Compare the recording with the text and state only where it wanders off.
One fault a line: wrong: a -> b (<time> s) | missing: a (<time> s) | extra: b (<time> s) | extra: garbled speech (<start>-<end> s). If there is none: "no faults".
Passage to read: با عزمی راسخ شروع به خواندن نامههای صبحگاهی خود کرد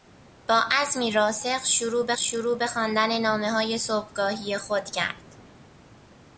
extra: شروع به (2.2 s)